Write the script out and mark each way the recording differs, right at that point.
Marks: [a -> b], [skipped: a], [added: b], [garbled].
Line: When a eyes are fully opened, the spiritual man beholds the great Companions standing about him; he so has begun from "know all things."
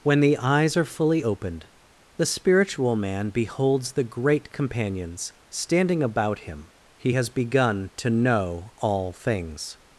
When [a -> the] eyes are fully opened, the spiritual man beholds the great Companions standing about him; he [skipped: so] has begun [from -> to] "know all things."